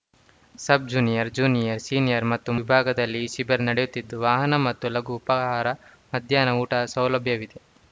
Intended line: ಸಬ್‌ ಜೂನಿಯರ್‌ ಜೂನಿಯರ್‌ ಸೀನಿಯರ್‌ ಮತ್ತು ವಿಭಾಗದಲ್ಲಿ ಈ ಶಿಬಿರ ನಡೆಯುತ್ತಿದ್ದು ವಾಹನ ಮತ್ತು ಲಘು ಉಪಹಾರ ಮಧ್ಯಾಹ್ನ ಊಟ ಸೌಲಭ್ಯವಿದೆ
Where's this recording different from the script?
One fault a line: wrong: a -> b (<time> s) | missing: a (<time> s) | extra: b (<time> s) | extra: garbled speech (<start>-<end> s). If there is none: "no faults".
no faults